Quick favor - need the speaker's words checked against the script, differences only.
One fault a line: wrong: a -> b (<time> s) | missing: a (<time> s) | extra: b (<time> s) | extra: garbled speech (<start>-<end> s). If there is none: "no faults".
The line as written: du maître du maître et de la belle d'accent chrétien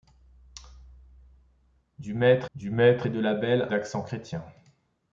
no faults